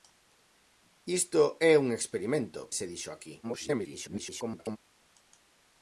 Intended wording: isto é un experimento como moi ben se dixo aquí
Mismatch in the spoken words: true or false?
true